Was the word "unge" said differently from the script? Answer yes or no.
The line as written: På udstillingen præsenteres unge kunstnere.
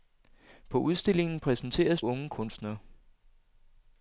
no